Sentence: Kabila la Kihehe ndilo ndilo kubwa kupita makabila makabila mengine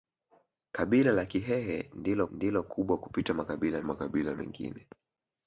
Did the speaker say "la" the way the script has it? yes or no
yes